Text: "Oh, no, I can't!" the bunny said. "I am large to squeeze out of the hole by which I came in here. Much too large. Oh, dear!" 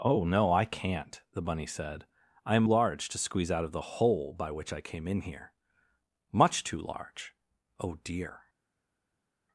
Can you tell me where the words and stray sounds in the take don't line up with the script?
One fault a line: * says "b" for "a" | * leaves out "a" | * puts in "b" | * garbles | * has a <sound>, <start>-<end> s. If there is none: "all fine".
all fine